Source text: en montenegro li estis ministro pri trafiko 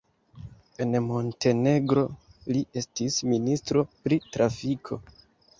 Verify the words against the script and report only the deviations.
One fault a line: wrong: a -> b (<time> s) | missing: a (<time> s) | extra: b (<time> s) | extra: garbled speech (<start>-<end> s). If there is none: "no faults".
no faults